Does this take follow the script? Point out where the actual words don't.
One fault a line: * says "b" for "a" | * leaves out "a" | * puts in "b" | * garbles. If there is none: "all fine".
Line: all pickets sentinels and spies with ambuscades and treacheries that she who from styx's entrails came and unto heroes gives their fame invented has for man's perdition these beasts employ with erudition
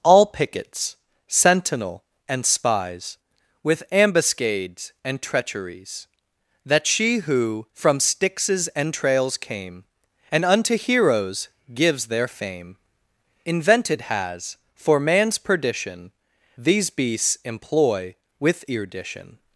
* says "sentinel" for "sentinels"